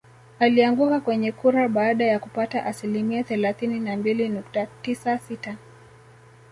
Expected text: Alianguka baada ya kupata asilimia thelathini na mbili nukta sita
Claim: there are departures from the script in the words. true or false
true